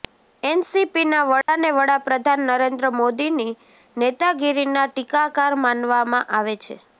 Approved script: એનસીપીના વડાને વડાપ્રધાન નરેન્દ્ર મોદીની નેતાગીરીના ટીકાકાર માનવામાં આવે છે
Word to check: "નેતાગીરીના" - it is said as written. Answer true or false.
true